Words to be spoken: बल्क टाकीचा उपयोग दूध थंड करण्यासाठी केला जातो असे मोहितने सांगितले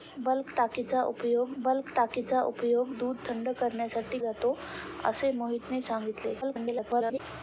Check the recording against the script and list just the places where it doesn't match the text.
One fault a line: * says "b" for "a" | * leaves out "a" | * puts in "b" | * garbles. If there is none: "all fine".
* puts in "बल्क टाकीचा उपयोग"
* leaves out "केला"
* garbles